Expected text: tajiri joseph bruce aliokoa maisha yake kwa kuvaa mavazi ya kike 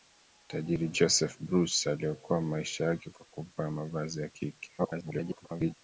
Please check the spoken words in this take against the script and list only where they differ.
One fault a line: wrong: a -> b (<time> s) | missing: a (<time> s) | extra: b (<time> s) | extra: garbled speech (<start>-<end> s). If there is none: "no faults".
extra: garbled speech (4.8-5.7 s)